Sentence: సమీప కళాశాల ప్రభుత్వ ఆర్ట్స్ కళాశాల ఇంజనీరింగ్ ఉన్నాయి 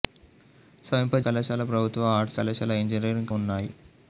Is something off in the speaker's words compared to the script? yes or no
no